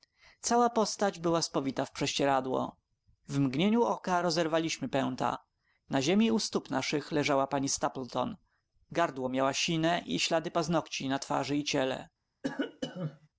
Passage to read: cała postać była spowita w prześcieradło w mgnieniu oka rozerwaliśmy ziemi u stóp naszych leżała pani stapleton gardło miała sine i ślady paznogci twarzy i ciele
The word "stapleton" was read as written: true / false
true